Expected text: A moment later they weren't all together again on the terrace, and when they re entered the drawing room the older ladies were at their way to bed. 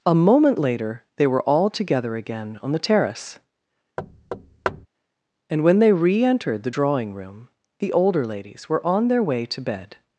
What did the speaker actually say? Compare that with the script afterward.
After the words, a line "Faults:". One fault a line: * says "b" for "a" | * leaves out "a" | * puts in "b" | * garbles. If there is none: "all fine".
A moment later they were all together again on the terrace, and when they re entered the drawing room the older ladies were on their way to bed.
Faults:
* says "were" for "weren't"
* says "on" for "at"